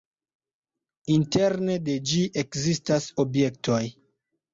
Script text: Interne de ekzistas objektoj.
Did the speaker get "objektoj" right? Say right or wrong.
right